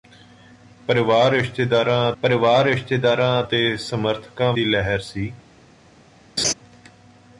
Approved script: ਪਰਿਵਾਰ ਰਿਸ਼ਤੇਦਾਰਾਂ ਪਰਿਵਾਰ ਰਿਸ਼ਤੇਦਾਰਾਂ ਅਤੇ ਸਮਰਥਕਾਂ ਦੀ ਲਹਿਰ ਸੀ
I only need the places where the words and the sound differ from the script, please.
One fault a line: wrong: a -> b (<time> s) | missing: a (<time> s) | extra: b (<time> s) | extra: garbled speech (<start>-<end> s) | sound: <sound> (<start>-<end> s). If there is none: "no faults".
sound: laugh (6.4-6.5 s)